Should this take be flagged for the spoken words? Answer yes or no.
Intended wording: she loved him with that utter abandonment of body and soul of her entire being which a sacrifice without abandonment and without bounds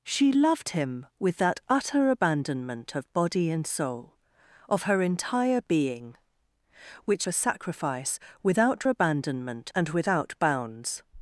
no